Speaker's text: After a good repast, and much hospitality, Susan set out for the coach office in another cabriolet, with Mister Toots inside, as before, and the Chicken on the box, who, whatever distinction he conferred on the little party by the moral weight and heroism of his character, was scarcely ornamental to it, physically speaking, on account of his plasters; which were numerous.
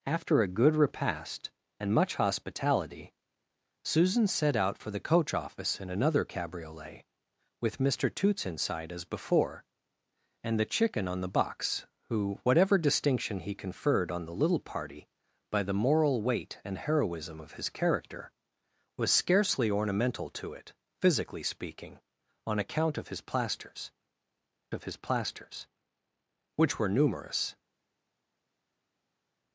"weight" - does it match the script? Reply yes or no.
yes